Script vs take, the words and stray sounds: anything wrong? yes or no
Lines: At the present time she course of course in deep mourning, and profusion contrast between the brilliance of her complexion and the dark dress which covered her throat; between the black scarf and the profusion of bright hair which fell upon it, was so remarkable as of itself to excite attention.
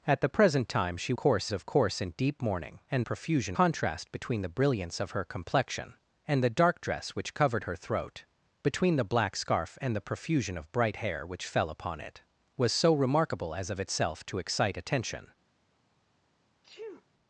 yes